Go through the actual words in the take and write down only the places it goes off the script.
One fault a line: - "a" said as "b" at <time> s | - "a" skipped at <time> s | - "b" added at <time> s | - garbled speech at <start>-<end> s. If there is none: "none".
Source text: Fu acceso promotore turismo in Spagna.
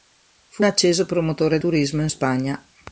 none